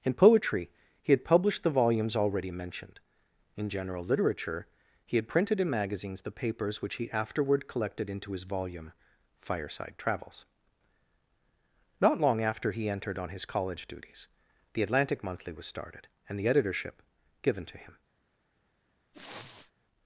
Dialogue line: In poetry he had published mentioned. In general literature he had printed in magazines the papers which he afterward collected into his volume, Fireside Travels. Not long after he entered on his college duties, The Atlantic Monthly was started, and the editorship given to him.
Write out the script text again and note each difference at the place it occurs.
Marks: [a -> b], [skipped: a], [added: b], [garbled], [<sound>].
In poetry he had published [added: the volumes already] mentioned. In general literature he had printed in magazines the papers which he afterward collected into his volume, Fireside Travels. Not long after he entered on his college duties, The Atlantic Monthly was started, and the editorship given to him. [sniff]